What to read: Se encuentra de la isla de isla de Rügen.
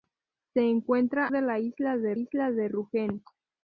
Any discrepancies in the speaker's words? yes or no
no